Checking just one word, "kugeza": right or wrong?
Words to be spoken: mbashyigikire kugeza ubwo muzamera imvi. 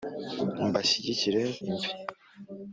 wrong